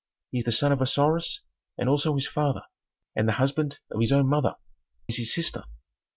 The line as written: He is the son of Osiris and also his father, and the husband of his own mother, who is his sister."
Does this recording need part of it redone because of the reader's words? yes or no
yes